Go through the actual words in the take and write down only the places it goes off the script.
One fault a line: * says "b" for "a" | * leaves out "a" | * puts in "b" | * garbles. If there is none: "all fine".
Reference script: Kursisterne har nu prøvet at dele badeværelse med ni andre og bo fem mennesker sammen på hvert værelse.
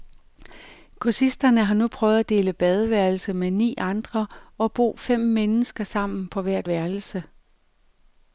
all fine